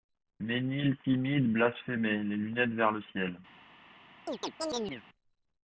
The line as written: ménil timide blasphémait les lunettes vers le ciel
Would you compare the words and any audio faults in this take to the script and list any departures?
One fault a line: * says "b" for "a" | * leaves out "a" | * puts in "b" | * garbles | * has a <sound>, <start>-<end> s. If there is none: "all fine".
* has a chirp, 4.3-5.0 s